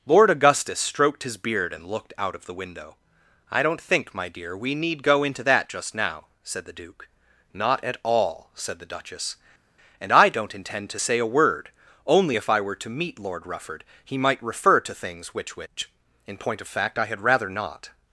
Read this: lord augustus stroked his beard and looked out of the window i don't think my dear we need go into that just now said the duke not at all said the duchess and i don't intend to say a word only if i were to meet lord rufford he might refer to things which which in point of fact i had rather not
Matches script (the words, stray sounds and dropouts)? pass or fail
pass